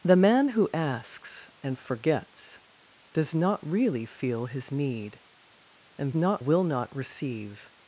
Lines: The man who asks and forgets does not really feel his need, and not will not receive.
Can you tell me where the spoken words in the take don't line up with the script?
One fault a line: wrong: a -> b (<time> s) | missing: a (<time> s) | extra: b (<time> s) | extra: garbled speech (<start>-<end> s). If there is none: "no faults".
no faults